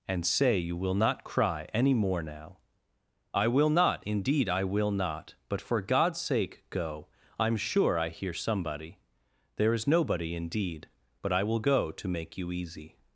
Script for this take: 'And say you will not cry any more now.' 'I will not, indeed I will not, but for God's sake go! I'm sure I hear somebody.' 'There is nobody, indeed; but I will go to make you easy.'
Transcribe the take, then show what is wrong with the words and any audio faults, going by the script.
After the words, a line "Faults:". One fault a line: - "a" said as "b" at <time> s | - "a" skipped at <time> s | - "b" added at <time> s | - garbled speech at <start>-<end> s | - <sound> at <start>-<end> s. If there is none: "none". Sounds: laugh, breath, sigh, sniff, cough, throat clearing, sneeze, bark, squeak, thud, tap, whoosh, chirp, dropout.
'And say you will not cry any more now.' 'I will not, indeed I will not, but for God's sake go! I'm sure I hear somebody.' 'There is nobody, indeed; but I will go to make you easy.'
Faults:
none